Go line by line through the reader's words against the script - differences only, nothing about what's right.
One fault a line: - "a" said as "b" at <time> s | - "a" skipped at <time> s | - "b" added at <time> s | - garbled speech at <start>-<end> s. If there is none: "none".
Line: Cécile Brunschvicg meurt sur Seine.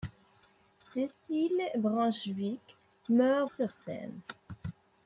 none